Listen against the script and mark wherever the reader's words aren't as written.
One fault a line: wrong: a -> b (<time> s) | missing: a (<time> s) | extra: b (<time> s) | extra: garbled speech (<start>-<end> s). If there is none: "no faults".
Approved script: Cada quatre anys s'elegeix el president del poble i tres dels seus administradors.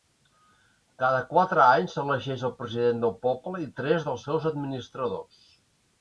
no faults